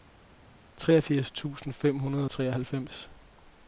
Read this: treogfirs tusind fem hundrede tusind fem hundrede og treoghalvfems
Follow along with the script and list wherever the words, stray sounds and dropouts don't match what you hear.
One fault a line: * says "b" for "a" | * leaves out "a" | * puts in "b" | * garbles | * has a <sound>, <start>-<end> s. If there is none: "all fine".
* leaves out "tusind fem hundrede"